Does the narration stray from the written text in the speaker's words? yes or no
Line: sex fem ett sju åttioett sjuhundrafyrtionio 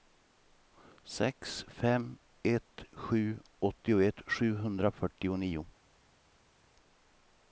no